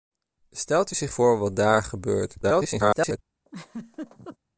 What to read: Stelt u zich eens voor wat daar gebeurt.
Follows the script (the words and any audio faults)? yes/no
no